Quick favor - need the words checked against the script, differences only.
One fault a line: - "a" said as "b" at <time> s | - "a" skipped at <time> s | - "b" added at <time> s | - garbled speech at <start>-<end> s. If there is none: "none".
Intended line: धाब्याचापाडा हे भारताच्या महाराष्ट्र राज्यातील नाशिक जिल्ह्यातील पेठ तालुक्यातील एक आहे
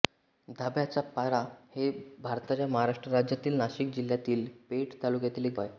none